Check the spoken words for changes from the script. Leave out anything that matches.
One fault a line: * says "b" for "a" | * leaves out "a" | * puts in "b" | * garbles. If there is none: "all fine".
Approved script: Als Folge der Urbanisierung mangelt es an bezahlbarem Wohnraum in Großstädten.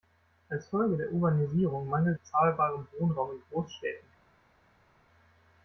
* leaves out "es an"